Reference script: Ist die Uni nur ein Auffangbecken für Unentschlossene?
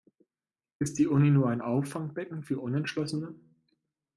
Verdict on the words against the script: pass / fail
pass